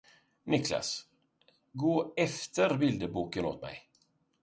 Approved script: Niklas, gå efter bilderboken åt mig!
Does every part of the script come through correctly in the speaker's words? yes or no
yes